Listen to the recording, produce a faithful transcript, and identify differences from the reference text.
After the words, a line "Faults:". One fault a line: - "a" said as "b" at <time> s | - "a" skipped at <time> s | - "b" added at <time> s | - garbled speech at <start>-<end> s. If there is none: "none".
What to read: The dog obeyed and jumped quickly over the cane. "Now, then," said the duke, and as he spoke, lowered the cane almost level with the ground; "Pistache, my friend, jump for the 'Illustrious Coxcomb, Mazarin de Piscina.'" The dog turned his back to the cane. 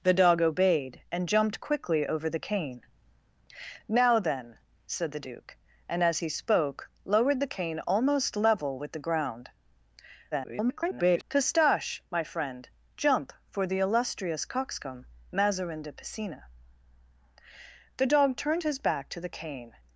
The dog obeyed and jumped quickly over the cane. "Now, then," said the duke, and as he spoke, lowered the cane almost level with the ground; [garbled] "Pistache, my friend, jump for the 'Illustrious Coxcomb, Mazarin de Piscina.'" The dog turned his back to the cane.
Faults:
- garbled speech at 10.3-11.2 s